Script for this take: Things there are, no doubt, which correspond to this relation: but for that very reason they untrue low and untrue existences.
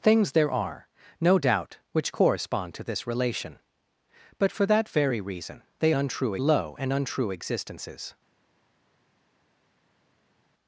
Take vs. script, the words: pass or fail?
pass